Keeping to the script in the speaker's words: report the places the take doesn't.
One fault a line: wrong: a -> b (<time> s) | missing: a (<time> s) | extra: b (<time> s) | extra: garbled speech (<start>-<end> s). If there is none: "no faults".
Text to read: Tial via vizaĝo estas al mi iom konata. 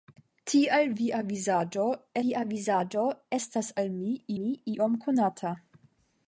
extra: via vizaĝo (2.2 s)
extra: mi (4.4 s)